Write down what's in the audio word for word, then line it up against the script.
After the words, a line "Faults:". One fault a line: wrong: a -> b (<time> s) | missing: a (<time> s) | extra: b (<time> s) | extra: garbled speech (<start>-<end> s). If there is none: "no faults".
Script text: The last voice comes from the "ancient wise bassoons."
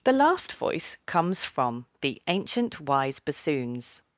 The last voice comes from the "ancient wise bassoons."
Faults:
no faults